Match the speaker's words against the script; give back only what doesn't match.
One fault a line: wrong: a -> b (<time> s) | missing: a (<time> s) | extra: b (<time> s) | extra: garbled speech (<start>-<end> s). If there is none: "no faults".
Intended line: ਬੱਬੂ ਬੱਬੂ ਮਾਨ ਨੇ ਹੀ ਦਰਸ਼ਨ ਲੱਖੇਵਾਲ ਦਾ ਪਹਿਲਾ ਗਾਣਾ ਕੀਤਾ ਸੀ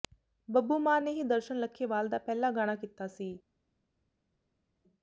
missing: ਬੱਬੂ (0.8 s)